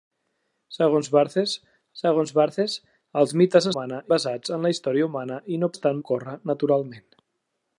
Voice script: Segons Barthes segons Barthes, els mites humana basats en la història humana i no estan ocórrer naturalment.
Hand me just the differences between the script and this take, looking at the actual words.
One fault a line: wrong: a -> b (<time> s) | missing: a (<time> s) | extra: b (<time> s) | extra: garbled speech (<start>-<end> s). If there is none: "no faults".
no faults